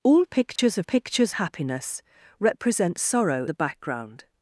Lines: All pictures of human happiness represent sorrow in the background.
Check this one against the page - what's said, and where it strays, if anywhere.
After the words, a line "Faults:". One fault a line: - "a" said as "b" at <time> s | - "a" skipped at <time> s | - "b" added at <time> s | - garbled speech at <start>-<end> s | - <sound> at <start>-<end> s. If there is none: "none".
All pictures of pictures happiness represent sorrow the background.
Faults:
- dropout at 0.6-0.6 s
- "human" said as "pictures" at 0.8 s
- "in" skipped at 3.5 s